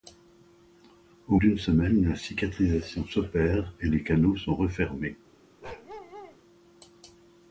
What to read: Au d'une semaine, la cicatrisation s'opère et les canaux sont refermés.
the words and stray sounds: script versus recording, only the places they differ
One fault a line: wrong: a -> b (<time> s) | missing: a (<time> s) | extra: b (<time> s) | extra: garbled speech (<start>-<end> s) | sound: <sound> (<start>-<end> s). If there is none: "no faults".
sound: bark (5.6-6.4 s)